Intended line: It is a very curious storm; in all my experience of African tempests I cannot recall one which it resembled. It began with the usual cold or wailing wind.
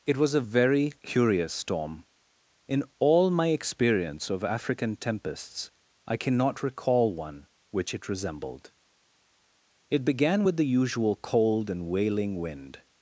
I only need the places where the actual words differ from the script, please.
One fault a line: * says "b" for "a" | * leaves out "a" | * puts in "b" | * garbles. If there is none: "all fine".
* says "was" for "is"
* says "and" for "or"